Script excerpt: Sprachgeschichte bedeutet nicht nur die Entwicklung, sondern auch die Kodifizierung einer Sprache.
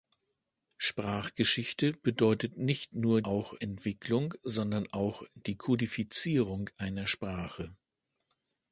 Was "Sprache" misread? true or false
false